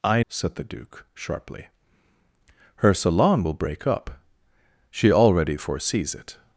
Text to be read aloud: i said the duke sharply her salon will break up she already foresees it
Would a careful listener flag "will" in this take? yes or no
no